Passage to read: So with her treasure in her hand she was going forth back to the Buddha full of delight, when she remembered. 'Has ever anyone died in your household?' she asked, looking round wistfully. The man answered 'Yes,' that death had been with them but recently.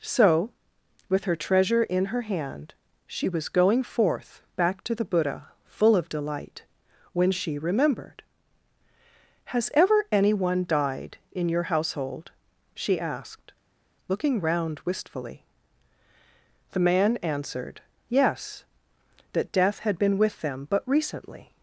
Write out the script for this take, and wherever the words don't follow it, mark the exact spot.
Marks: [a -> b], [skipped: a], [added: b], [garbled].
So with her treasure in her hand she was going forth back to the Buddha full of delight, when she remembered. 'Has ever anyone died in your household?' she asked, looking round wistfully. The man answered 'Yes,' that death had been with them but recently.